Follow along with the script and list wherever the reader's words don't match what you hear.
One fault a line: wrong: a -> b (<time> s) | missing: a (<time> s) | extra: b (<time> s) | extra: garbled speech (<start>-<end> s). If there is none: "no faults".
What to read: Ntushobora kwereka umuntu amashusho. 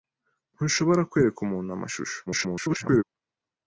extra: garbled speech (2.3-3.0 s)